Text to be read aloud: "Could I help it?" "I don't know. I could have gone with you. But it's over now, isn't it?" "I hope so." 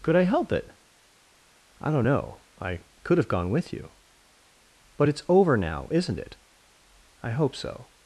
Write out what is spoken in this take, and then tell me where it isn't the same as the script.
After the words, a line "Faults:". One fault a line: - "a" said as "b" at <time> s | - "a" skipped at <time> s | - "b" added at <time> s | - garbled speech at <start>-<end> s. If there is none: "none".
"Could I help it?" "I don't know. I could have gone with you. But it's over now, isn't it?" "I hope so."
Faults:
none